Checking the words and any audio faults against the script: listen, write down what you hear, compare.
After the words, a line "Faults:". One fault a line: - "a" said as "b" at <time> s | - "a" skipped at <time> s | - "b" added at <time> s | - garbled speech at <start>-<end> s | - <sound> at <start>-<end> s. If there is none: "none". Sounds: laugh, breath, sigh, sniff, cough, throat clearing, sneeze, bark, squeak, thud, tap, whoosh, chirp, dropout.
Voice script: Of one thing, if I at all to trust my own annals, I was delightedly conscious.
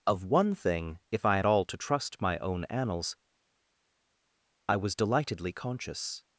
Of one thing, if I at all to trust my own annals, I was delightedly conscious.
Faults:
none